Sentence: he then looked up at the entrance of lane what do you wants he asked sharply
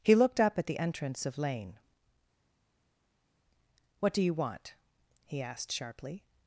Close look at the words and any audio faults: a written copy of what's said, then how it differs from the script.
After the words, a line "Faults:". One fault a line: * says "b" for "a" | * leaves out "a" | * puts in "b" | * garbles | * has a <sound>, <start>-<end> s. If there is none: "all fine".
he looked up at the entrance of lane what do you want he asked sharply
Faults:
* leaves out "then"
* says "want" for "wants"